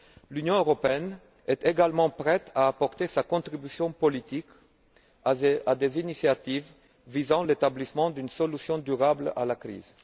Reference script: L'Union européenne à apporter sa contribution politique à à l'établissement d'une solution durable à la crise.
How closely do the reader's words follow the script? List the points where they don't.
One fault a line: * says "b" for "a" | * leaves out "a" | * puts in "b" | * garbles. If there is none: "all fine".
* puts in "est également prête"
* puts in "des initiatives visant"